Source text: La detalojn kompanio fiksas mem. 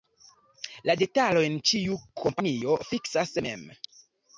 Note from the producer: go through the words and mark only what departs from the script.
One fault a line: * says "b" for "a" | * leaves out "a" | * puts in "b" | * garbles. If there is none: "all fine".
* puts in "ĉiu"